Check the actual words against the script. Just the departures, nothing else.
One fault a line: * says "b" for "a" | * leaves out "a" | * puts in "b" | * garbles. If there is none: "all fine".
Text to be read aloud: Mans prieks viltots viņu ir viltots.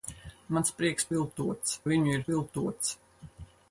all fine